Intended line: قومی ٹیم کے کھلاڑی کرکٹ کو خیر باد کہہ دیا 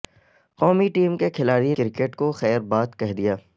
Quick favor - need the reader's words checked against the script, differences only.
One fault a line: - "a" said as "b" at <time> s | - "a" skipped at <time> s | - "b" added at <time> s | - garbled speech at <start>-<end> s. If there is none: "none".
none